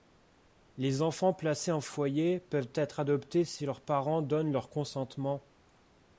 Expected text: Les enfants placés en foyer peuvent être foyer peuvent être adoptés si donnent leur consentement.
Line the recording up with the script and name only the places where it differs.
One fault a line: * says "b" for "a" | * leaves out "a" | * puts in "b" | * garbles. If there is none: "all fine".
* says "adoptés si leurs parents" for "foyer peuvent être adoptés si"